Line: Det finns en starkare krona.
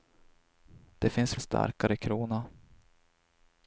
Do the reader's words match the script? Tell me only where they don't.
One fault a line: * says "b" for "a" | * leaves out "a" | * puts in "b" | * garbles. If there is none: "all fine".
all fine